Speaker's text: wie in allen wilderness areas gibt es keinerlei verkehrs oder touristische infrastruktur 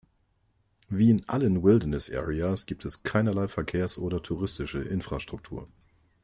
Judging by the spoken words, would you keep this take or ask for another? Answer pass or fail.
pass